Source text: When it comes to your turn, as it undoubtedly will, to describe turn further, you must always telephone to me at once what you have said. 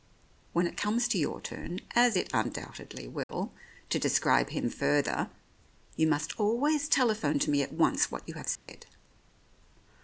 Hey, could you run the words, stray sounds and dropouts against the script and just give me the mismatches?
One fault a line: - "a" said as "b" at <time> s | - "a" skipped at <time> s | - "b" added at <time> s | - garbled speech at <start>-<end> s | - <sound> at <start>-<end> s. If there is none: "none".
- dropout at 3.2-3.3 s
- "turn" said as "him" at 4.5 s
- dropout at 8.6-8.7 s